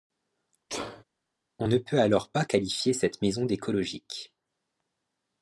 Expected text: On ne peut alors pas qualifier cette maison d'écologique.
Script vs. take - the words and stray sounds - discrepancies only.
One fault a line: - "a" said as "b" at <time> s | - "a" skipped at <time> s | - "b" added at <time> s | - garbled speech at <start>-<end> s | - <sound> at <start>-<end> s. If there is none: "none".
- sneeze at 0.7-1.0 s